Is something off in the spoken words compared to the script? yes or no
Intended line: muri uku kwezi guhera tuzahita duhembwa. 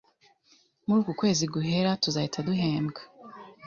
no